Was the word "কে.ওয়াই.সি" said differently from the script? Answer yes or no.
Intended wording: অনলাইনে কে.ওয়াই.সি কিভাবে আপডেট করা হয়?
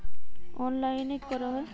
yes